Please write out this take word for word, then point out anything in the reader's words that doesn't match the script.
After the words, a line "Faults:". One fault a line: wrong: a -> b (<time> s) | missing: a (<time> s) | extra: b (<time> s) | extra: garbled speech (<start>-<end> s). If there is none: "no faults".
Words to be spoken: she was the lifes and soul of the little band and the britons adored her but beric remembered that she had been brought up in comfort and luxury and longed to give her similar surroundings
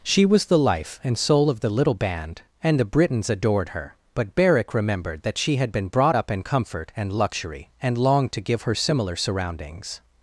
she was the life and soul of the little band and the britons adored her but beric remembered that she had been brought up in comfort and luxury and longed to give her similar surroundings
Faults:
wrong: lifes -> life (0.6 s)